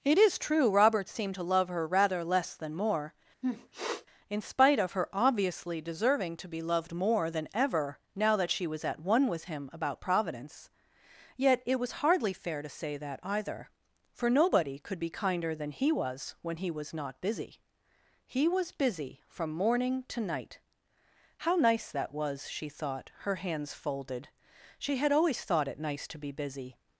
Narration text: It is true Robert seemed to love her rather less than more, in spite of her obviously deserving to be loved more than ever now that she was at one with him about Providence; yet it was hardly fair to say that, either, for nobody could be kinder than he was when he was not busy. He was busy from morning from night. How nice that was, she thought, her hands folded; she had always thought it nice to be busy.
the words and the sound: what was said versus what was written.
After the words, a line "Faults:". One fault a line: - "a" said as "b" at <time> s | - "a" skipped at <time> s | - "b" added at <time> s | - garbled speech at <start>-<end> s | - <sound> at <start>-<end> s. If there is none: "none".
It is true Robert seemed to love her rather less than more, in spite of her obviously deserving to be loved more than ever now that she was at one with him about Providence; yet it was hardly fair to say that, either, for nobody could be kinder than he was when he was not busy. He was busy from morning to night. How nice that was, she thought, her hands folded; she had always thought it nice to be busy.
Faults:
- sniff at 3.4-4.1 s
- "from" said as "to" at 20.1 s